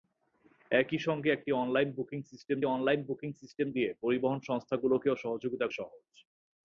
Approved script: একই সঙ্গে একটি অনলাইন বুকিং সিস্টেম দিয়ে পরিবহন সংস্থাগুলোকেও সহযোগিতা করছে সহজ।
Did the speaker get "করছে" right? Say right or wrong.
wrong